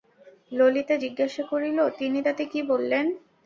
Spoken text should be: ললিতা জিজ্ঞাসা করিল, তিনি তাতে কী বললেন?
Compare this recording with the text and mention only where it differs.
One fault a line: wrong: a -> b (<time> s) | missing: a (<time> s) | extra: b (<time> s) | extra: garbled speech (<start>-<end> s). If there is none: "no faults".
no faults